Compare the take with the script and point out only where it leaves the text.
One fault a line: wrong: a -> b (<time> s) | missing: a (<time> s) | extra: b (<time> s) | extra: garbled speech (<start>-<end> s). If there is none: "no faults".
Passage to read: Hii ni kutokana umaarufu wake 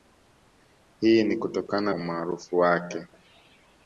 no faults